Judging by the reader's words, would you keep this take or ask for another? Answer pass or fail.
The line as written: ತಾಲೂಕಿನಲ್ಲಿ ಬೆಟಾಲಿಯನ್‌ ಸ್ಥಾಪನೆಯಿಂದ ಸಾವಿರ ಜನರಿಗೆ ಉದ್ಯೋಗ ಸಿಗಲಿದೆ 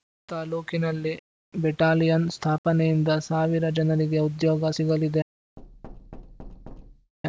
pass